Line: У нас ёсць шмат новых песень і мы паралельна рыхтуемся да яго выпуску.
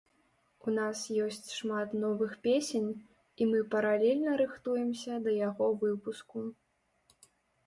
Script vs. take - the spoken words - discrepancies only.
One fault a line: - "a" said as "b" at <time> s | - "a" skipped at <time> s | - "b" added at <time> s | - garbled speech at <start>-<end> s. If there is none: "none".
none